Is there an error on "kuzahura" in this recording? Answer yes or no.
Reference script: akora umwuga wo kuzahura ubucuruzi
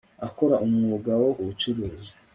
yes